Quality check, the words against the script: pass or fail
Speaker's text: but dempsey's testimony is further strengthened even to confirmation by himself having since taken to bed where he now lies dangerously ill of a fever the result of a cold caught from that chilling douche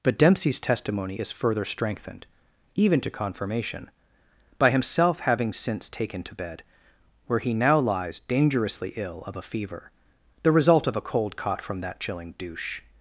pass